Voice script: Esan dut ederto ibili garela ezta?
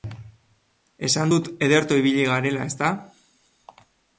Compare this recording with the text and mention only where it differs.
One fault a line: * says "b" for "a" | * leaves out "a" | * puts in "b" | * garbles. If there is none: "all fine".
all fine